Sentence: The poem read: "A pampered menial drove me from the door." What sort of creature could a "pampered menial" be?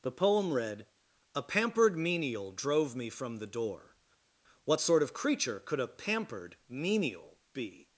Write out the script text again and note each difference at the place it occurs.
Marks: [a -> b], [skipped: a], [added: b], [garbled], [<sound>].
The poem read: "A pampered menial drove me from the door." What sort of creature could a "pampered menial" be?